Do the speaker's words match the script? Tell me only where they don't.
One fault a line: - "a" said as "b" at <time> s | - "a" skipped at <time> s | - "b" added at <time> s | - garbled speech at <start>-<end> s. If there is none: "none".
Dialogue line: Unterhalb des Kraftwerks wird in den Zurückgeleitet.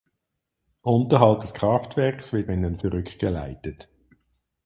none